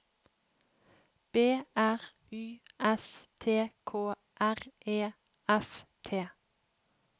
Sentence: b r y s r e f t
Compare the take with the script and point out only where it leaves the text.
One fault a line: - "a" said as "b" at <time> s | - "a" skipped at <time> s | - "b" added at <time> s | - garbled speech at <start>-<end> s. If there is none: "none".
- "t k" added at 3.4 s